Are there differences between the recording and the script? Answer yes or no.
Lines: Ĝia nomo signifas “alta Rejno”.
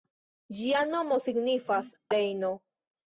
yes